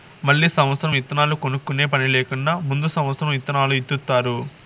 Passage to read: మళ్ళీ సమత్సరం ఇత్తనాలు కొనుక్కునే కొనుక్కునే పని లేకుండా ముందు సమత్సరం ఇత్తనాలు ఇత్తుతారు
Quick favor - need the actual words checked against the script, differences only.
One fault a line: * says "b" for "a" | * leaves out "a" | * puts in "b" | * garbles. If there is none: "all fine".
* leaves out "కొనుక్కునే"